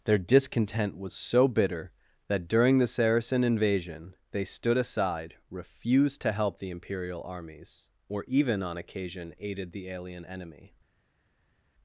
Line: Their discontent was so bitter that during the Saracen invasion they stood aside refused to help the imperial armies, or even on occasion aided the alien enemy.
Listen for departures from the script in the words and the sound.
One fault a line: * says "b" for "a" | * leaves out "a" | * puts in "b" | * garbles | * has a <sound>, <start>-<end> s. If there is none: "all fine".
all fine